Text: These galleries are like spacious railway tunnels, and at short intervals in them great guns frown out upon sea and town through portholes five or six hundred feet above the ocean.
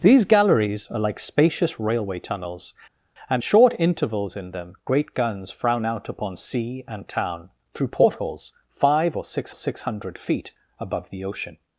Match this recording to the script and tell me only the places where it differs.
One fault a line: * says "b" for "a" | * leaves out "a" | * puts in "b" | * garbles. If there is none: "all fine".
* leaves out "at"
* puts in "six"